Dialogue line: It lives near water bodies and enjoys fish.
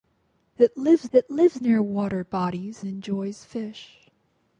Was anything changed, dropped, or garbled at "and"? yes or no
yes